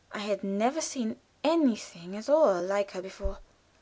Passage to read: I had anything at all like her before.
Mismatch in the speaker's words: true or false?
true